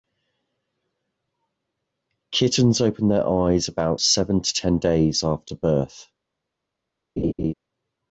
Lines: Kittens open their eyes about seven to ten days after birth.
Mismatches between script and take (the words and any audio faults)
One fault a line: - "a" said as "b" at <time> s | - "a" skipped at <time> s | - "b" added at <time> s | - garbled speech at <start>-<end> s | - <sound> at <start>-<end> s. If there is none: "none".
- laugh at 7.2-7.5 s